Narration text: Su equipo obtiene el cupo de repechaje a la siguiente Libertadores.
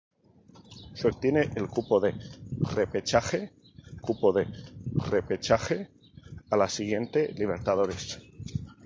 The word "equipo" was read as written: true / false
false